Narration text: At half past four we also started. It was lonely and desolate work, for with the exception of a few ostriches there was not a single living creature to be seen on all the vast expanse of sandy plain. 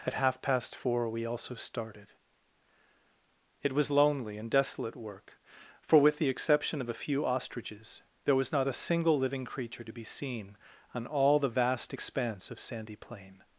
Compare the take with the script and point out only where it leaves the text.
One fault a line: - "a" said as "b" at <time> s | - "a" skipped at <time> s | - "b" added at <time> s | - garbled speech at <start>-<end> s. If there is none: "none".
none